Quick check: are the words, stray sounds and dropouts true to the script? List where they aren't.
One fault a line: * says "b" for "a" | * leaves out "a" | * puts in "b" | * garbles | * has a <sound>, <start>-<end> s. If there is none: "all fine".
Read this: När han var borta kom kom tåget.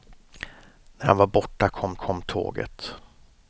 all fine